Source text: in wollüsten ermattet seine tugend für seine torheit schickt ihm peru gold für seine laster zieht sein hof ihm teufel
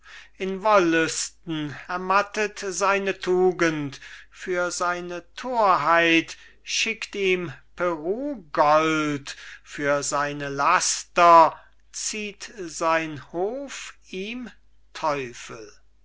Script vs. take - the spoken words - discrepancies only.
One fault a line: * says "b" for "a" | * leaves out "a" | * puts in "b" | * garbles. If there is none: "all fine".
all fine